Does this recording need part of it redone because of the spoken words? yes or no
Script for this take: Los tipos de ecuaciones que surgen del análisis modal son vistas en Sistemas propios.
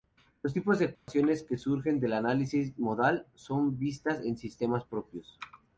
no